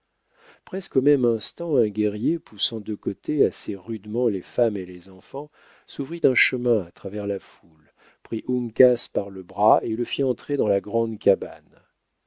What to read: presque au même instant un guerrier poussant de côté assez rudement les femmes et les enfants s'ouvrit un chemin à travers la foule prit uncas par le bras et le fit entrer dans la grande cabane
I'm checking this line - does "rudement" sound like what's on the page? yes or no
yes